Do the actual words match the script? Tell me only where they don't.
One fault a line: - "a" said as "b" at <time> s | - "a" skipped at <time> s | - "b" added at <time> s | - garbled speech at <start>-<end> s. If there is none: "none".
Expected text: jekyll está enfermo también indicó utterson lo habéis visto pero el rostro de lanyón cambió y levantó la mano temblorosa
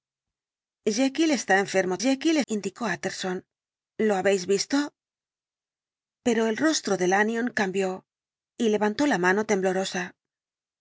- "también" said as "jekyll" at 2.0 s